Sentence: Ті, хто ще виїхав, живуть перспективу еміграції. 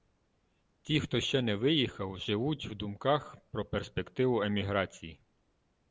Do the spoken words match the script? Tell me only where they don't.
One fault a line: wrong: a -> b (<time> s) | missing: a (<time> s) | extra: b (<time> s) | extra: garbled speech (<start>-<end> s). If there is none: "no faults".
extra: не (1.4 s)
extra: в думках про (2.6 s)